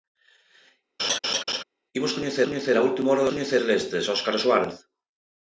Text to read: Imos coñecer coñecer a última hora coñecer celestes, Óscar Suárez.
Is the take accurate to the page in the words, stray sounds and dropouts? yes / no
no